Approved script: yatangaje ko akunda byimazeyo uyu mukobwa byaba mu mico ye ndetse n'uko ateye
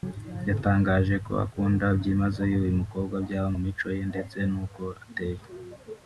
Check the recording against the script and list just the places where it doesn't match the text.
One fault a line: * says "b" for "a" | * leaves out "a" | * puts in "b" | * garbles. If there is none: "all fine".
all fine